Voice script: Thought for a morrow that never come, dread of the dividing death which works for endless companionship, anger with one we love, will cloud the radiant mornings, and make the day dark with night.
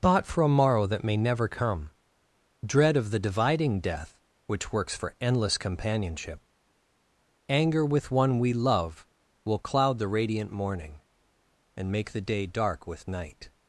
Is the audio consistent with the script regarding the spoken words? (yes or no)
no